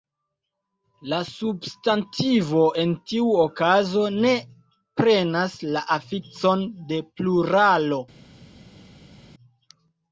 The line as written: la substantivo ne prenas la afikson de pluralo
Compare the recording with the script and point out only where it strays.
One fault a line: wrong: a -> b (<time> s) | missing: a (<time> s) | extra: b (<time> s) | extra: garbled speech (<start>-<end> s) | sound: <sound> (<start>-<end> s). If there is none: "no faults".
extra: en tiu okazo (2.8 s)